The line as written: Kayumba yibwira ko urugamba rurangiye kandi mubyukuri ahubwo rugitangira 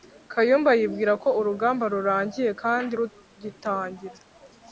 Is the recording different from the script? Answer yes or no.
yes